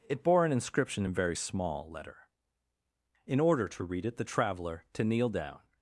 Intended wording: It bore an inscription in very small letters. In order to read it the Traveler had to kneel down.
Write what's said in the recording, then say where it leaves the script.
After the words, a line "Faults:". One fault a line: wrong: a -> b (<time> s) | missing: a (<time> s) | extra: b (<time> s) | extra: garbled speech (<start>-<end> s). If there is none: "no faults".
It bore an inscription in very small letter. In order to read it the Traveler to kneel down.
Faults:
wrong: letters -> letter (1.9 s)
missing: had (4.9 s)